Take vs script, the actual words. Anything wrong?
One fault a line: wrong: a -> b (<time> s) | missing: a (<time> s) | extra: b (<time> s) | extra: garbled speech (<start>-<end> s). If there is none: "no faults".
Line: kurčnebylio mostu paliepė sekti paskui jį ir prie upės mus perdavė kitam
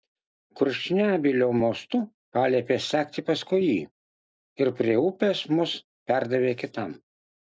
no faults